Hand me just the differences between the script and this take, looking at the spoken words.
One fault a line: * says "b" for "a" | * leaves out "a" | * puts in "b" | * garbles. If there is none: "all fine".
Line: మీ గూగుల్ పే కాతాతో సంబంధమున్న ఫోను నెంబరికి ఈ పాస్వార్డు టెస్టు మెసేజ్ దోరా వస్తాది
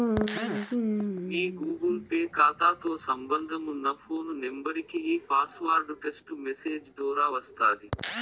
all fine